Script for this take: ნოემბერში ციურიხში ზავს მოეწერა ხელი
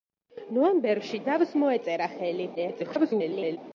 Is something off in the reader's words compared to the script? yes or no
yes